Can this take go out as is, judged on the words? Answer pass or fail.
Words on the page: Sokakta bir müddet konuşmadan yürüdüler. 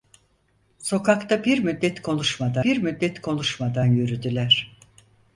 fail